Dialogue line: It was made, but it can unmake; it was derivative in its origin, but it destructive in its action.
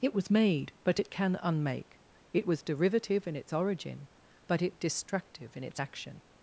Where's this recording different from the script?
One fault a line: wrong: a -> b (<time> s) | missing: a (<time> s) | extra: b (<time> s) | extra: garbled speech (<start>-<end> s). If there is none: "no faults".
no faults